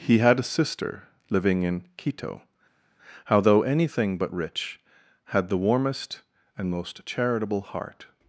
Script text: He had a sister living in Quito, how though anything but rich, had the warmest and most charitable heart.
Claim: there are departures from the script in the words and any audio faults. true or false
false